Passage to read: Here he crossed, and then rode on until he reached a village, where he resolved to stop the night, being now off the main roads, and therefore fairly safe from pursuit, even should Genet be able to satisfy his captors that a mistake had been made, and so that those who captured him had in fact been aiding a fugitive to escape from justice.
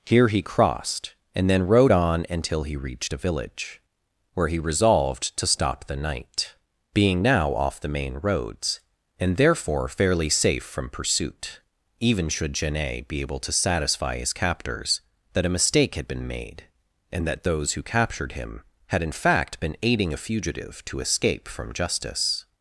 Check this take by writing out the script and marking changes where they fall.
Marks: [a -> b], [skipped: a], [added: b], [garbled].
Here he crossed, and then rode on until he reached a village, where he resolved to stop the night, being now off the main roads, and therefore fairly safe from pursuit, even should Genet be able to satisfy his captors that a mistake had been made, and [skipped: so] that those who captured him had in fact been aiding a fugitive to escape from justice.